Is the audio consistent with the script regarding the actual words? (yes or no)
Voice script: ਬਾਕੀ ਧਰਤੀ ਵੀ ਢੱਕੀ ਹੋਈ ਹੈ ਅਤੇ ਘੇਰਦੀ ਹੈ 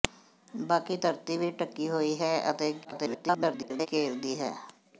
no